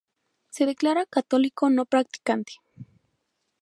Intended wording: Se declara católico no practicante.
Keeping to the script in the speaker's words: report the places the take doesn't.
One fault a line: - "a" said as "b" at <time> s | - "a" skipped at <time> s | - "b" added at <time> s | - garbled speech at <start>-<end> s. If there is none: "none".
none